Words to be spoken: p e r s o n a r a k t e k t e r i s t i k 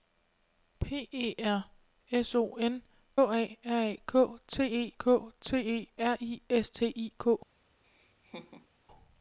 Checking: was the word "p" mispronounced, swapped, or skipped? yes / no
no